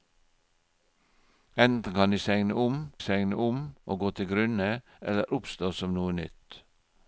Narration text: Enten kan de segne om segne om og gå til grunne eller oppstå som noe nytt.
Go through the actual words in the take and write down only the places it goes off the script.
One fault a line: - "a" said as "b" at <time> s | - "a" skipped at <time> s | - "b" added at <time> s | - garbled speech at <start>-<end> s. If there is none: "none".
none